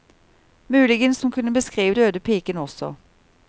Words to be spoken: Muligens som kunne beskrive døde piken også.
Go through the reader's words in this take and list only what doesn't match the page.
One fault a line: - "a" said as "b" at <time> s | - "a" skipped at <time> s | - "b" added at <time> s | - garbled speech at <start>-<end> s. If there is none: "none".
none